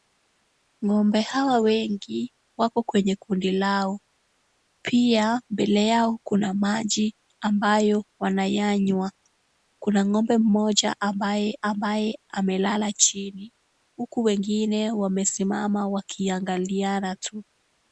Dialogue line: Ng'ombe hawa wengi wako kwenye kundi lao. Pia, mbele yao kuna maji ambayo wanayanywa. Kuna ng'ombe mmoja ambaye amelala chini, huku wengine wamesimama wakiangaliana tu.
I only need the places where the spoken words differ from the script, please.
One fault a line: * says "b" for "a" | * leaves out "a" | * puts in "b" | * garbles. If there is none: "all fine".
* puts in "ambaye"